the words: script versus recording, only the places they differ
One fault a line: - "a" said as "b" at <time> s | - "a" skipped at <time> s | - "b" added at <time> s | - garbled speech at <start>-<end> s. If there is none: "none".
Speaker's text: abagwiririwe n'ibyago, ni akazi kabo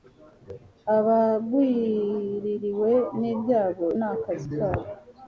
none